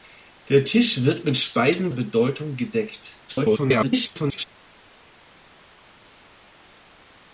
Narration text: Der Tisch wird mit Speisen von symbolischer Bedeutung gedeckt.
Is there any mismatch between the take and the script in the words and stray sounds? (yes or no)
yes